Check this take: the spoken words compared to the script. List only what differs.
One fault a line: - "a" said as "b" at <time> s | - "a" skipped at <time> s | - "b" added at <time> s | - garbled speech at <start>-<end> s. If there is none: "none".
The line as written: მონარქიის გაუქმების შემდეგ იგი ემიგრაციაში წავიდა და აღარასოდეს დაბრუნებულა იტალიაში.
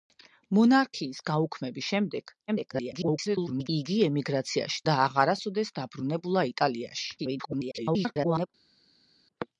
- garbled speech at 2.5-3.7 s
- "წავიდა" skipped at 4.8 s
- garbled speech at 7.2-8.5 s